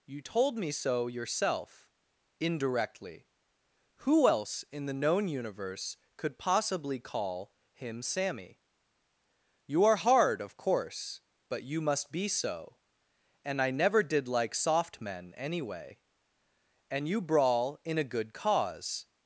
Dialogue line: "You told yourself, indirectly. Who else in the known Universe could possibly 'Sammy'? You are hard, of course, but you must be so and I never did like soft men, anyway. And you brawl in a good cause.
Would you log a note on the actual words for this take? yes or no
yes